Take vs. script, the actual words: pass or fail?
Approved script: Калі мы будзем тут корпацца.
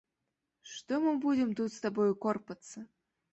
fail